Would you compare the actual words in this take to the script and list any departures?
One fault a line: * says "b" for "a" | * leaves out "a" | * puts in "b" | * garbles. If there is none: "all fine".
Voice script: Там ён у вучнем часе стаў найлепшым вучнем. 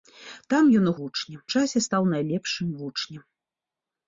all fine